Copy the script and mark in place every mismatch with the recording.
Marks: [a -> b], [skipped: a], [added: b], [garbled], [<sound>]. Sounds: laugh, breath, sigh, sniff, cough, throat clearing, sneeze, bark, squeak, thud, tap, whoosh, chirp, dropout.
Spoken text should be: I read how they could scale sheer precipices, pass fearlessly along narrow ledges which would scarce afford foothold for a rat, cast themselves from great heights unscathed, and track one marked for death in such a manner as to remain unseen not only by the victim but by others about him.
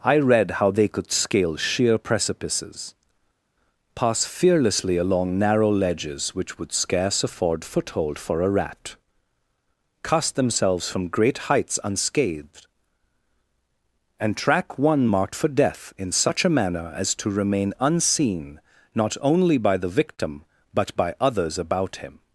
I read how they could scale sheer precipices, pass fearlessly along narrow ledges which would scarce afford foothold for a rat, cast themselves from great heights unscathed, and track one marked for death in such a manner as to remain unseen not only by the victim but by others about him.